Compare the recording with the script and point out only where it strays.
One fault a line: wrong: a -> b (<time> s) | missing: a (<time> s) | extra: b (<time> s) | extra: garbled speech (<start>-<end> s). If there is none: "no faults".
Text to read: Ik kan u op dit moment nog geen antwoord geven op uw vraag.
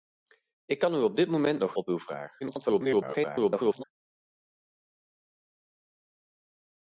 missing: geen antwoord geven (1.8 s)
extra: garbled speech (2.4-3.8 s)